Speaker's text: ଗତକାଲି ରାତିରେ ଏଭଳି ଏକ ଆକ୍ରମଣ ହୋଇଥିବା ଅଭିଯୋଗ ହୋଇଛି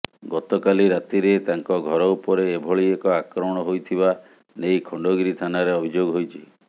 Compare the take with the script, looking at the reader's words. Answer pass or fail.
fail